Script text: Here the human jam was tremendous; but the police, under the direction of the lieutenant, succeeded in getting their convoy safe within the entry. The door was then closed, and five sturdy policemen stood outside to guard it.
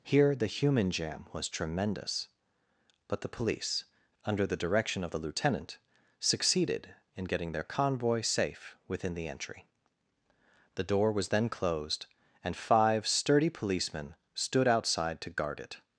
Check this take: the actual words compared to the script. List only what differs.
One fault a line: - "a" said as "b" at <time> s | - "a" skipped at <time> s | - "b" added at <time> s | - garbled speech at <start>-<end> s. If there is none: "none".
none